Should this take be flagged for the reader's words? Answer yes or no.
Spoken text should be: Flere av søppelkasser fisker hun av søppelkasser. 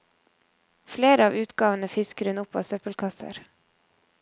yes